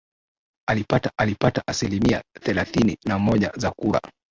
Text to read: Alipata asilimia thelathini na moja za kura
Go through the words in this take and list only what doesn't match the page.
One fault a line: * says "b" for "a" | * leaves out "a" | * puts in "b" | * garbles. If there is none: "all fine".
* puts in "alipata"